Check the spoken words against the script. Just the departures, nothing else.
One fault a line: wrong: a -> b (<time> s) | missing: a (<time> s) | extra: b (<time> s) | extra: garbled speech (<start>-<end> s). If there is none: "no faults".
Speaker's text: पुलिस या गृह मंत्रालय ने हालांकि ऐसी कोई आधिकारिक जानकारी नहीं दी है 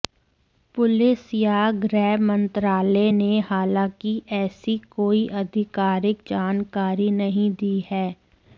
no faults